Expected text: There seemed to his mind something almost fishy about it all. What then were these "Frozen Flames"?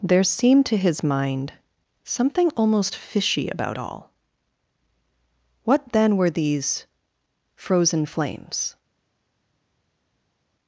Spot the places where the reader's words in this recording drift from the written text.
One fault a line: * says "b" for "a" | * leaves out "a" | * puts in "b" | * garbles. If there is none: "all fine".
* leaves out "it"